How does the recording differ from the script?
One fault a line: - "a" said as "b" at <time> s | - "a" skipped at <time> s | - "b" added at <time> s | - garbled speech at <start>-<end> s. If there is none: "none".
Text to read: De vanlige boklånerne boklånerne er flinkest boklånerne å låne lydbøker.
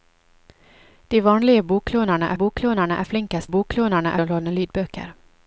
none